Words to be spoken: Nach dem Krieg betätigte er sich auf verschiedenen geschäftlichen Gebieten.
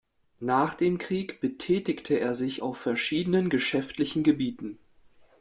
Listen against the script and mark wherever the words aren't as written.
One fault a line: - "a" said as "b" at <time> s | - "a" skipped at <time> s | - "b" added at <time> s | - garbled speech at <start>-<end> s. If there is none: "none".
none